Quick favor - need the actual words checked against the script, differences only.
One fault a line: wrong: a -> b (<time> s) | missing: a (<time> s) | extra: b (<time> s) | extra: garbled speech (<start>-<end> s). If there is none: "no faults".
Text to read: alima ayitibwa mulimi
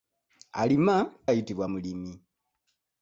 no faults